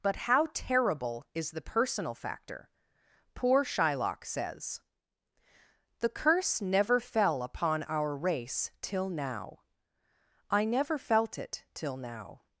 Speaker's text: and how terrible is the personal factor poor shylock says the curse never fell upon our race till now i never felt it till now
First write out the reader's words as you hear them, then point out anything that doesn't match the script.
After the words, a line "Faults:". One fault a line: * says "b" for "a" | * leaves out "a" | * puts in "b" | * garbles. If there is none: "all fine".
but how terrible is the personal factor poor shylock says the curse never fell upon our race till now i never felt it till now
Faults:
* says "but" for "and"